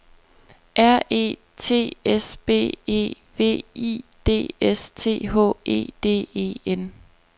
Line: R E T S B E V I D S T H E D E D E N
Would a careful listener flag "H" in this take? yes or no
no